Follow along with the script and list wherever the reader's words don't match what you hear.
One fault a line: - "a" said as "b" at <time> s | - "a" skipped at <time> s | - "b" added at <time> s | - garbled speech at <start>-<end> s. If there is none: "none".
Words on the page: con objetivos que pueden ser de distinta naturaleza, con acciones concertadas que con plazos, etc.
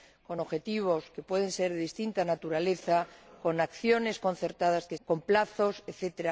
none